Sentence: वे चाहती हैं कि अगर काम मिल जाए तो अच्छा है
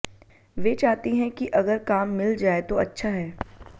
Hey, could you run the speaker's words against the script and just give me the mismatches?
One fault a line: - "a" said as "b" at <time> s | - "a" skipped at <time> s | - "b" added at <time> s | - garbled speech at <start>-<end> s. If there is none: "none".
none